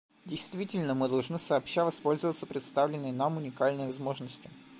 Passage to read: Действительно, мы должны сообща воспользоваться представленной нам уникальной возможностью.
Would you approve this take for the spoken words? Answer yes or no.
yes